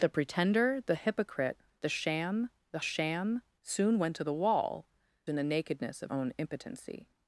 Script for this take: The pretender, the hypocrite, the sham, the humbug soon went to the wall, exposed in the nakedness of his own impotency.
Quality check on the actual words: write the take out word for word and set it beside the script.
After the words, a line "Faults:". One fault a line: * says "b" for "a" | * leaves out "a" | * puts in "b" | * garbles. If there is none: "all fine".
The pretender, the hypocrite, the sham, the sham soon went to the wall, in the nakedness of own impotency.
Faults:
* says "sham" for "humbug"
* leaves out "exposed"
* leaves out "his"